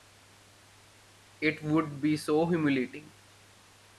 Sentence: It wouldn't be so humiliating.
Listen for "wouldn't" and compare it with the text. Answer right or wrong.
wrong